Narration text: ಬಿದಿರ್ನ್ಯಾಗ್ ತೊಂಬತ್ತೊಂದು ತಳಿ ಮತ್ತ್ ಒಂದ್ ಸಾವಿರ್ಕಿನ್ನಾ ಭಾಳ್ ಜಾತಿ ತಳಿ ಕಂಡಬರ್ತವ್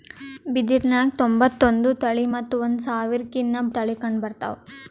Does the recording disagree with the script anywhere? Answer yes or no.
yes